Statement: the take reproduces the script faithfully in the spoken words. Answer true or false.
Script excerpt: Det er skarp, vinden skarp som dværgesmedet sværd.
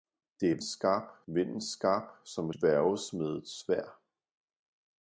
true